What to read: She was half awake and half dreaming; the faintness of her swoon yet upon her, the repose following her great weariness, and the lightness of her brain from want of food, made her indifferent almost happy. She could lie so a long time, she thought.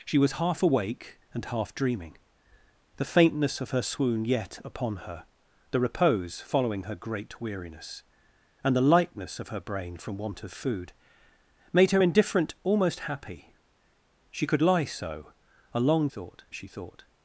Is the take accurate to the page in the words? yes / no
no